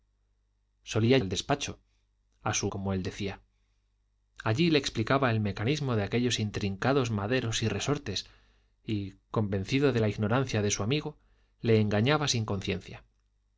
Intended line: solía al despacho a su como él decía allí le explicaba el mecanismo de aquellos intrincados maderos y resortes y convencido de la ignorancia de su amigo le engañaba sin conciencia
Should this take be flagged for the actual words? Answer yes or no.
no